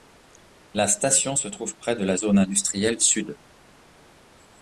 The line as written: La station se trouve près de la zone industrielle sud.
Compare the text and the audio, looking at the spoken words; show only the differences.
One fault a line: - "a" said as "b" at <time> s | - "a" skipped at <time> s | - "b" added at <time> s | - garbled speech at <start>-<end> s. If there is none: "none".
none